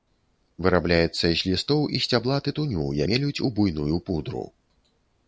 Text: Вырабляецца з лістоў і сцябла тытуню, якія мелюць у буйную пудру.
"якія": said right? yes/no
no